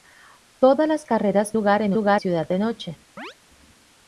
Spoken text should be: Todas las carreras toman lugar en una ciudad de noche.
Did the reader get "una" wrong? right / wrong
wrong